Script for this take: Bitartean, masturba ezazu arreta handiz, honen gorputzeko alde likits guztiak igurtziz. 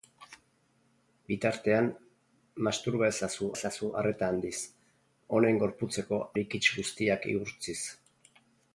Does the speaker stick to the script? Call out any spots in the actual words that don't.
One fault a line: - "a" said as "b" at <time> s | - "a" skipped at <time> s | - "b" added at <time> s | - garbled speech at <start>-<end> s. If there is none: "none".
- "ezazu" added at 3.6 s
- "alde" skipped at 6.2 s